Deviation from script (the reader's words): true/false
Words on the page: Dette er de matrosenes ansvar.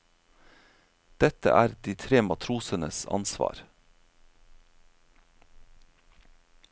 true